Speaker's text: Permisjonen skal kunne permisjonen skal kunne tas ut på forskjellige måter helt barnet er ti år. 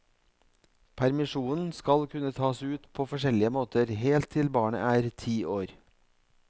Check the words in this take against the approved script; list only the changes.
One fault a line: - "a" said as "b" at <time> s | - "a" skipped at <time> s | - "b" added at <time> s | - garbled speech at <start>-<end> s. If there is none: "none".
- "permisjonen skal kunne" skipped at 2.3 s
- "til" added at 4.4 s